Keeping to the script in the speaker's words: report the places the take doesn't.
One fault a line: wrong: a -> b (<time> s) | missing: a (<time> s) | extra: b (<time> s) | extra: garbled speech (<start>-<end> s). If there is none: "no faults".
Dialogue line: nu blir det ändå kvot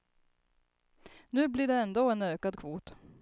extra: en ökad (2.1 s)